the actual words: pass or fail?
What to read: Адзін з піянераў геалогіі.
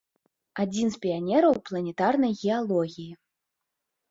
fail